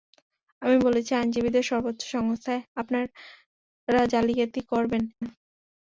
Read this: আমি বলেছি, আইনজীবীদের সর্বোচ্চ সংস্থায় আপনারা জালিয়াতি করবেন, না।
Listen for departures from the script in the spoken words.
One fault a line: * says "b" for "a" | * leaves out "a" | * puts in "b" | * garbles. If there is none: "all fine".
all fine